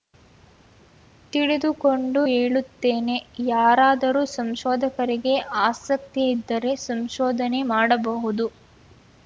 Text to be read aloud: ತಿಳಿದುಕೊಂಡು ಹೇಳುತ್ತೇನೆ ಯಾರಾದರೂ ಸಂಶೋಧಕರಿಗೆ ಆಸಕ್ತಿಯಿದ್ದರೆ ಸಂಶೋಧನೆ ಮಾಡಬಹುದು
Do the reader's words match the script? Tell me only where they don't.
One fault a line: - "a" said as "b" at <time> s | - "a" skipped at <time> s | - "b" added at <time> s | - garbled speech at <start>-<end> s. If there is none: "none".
none